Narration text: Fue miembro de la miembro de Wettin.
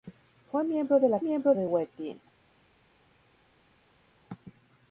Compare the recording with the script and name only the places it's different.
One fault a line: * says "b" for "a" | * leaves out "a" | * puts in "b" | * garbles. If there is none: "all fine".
all fine